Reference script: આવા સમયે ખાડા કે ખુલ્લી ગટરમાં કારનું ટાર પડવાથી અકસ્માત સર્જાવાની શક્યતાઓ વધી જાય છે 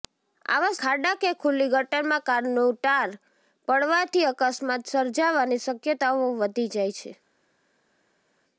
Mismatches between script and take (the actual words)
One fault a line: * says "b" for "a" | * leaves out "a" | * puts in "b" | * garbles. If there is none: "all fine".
* leaves out "સમયે"